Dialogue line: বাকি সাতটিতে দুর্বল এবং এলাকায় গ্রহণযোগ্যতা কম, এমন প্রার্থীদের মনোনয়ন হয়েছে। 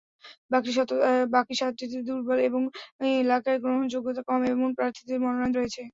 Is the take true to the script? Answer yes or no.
yes